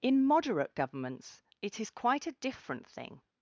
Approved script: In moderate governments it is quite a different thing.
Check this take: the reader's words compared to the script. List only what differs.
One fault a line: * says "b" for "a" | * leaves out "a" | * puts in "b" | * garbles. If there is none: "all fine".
all fine